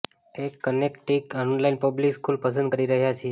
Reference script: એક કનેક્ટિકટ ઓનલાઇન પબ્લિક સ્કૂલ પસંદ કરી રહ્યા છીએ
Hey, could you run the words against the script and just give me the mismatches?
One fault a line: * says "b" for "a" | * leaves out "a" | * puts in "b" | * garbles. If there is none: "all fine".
all fine